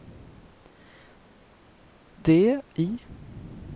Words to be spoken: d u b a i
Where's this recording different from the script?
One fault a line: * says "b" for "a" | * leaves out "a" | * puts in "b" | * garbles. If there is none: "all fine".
* leaves out "u b a"